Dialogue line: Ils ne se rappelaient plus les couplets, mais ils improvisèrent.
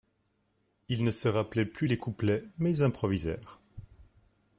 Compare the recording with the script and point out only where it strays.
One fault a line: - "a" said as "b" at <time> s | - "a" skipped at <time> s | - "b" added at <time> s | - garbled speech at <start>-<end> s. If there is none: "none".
none